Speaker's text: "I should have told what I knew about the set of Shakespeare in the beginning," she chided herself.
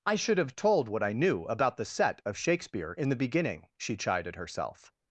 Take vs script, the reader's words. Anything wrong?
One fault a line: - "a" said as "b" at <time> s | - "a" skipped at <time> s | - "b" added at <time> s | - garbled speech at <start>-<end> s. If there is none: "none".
none